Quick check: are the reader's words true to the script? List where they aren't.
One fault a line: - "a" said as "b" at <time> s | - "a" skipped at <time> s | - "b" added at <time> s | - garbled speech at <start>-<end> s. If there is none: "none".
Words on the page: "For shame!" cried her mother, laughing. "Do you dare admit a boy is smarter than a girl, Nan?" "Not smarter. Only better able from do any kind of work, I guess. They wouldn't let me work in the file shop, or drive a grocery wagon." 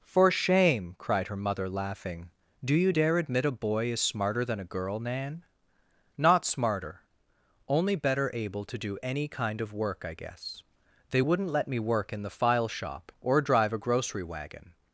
- "from" said as "to" at 8.6 s